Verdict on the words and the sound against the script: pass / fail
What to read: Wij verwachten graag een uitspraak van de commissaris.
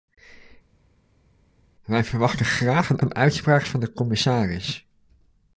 fail